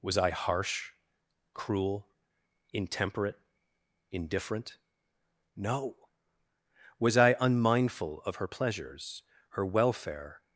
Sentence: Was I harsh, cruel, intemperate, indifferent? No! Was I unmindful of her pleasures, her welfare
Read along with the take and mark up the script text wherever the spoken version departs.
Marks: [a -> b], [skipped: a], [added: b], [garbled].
Was I harsh, cruel, intemperate, indifferent? No! Was I unmindful of her pleasures, her welfare